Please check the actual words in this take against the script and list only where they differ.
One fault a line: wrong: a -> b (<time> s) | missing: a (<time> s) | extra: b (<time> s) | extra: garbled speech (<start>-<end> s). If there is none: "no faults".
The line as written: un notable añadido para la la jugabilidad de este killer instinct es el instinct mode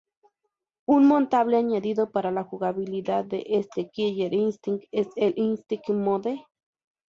missing: la (2.4 s)